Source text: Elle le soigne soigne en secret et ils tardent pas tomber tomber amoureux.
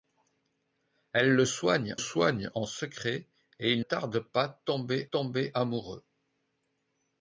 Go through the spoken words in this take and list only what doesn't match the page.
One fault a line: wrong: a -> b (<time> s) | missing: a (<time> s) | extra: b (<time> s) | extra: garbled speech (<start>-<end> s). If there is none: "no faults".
no faults